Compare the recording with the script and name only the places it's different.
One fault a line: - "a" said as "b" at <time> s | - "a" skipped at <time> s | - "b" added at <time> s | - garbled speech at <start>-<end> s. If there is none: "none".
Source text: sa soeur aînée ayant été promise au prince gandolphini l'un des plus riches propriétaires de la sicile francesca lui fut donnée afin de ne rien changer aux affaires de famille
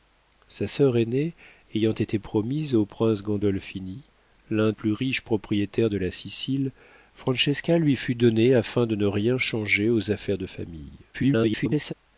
- "des" skipped at 4.7 s
- garbled speech at 11.1-11.9 s